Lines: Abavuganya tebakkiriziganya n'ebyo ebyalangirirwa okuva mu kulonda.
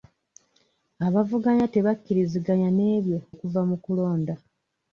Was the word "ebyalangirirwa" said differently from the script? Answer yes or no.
yes